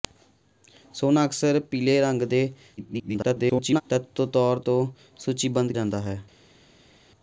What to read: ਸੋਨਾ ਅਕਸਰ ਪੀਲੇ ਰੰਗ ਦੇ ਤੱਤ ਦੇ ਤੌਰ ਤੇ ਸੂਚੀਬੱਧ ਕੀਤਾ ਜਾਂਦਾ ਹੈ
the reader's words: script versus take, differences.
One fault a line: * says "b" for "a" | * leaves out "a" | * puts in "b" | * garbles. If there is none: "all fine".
* garbles
* leaves out "ਕੀਤਾ"